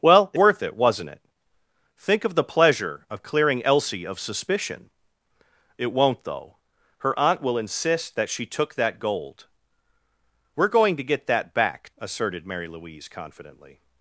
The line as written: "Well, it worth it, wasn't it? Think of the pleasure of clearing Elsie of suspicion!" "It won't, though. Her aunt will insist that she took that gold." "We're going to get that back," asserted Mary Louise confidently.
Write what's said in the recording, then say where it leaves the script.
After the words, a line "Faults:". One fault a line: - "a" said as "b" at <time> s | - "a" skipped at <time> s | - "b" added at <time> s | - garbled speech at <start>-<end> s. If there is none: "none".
"Well, it worth it, wasn't it? Think of the pleasure of clearing Elsie of suspicion!" "It won't, though. Her aunt will insist that she took that gold." "We're going to get that back," asserted Mary Louise confidently.
Faults:
none